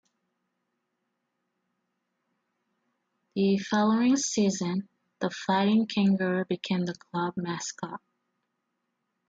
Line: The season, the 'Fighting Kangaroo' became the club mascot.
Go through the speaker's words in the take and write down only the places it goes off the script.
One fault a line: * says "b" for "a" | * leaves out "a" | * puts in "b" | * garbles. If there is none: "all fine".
* puts in "following"